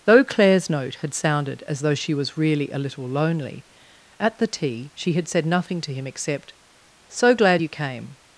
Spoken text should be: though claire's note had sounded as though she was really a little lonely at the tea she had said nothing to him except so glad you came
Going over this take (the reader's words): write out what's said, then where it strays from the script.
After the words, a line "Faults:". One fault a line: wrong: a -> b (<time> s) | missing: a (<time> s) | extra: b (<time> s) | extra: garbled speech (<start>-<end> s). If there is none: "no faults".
though claire's note had sounded as though she was really a little lonely at the tea she had said nothing to him except so glad you came
Faults:
no faults